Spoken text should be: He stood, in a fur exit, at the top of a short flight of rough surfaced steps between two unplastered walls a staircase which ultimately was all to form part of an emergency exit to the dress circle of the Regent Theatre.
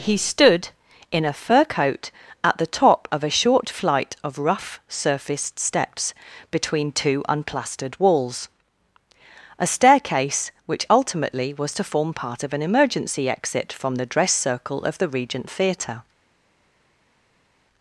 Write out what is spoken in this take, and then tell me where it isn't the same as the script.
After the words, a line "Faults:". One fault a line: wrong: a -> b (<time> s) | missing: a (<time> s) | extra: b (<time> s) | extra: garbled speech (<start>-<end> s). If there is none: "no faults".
He stood, in a fur coat, at the top of a short flight of rough surfaced steps between two unplastered walls a staircase which ultimately was to form part of an emergency exit from the dress circle of the Regent Theatre.
Faults:
wrong: exit -> coat (1.6 s)
missing: all (11.7 s)
wrong: to -> from (13.7 s)